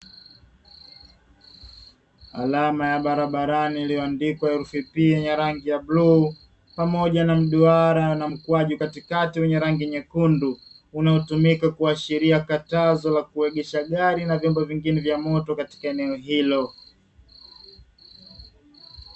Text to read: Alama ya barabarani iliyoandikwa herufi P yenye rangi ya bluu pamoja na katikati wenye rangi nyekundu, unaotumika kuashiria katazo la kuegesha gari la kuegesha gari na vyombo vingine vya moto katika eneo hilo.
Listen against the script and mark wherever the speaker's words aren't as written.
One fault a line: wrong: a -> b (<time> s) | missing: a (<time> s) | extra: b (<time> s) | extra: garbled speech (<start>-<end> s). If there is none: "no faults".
extra: mduara na mkwaju (7.3 s)
missing: la kuegesha gari (14.2 s)